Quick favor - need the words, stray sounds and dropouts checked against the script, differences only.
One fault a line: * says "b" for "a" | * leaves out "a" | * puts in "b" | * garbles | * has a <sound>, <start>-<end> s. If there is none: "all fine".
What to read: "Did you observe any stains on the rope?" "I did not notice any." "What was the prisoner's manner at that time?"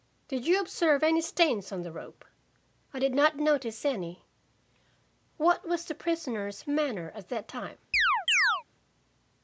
* has a chirp, 7.9-8.6 s